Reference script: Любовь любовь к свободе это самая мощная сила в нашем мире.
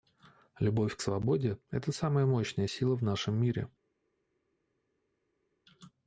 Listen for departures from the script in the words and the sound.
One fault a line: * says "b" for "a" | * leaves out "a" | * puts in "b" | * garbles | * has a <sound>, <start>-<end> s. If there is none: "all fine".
* leaves out "любовь"